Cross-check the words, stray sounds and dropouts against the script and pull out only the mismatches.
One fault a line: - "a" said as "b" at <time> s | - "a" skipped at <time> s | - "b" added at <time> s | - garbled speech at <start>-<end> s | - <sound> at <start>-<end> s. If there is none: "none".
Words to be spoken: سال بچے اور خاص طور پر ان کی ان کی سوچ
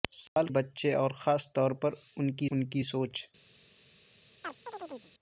- dropout at 0.3-0.4 s
- chirp at 4.4-5.1 s